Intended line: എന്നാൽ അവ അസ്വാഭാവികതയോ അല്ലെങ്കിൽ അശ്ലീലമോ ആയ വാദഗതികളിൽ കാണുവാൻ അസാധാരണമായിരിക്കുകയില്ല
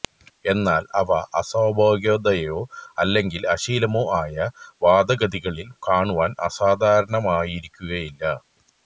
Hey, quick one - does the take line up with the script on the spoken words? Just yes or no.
yes